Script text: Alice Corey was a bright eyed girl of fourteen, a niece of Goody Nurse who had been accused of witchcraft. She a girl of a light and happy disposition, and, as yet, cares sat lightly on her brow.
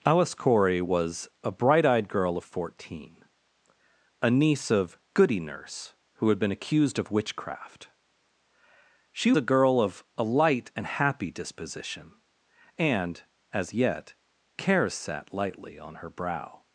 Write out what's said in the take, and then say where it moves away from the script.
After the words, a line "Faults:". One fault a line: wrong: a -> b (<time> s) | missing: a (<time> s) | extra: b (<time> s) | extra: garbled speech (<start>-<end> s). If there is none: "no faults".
Alice Corey was a bright eyed girl of fourteen, a niece of Goody Nurse who had been accused of witchcraft. She a girl of a light and happy disposition, and, as yet, cares sat lightly on her brow.
Faults:
no faults